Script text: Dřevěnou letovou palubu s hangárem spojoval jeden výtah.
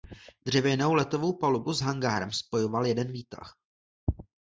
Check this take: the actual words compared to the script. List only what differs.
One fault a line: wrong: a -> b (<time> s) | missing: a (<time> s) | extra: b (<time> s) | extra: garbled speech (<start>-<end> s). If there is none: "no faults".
no faults